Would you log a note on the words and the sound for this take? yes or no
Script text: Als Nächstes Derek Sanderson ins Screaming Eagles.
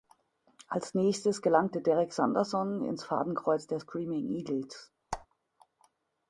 yes